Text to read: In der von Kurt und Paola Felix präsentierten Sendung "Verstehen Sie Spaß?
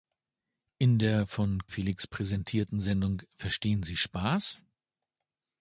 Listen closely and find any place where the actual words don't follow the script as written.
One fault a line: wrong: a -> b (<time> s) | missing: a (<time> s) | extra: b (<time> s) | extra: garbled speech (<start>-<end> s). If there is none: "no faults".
missing: Kurt und Paola (1.7 s)